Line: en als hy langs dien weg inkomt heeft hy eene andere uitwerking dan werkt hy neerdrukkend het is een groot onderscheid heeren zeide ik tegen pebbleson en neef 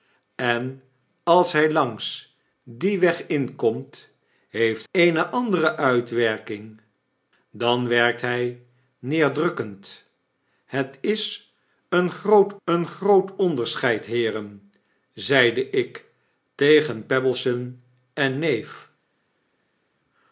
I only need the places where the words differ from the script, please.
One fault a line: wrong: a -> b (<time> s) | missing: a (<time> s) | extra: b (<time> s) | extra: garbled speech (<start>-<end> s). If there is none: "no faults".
missing: hy (4.8 s)
extra: een groot (12.6 s)